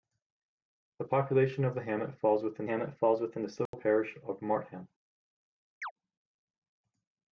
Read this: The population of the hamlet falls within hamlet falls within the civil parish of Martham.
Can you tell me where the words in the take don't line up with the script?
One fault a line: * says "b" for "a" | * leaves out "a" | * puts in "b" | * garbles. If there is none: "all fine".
all fine